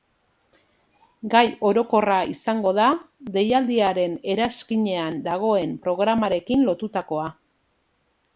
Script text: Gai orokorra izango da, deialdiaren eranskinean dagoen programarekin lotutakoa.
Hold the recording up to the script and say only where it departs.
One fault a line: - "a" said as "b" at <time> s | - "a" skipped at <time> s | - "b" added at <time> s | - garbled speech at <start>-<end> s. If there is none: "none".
none